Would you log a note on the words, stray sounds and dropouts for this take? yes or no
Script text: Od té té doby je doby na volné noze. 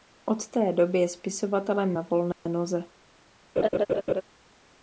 yes